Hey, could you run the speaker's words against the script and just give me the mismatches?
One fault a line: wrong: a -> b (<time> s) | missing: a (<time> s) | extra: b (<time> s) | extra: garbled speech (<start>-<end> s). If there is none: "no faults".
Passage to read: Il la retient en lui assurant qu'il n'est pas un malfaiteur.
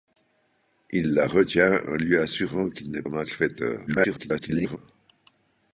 missing: pas (3.0 s)
extra: garbled speech (3.9-4.8 s)